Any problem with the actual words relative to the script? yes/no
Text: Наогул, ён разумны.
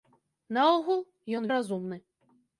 no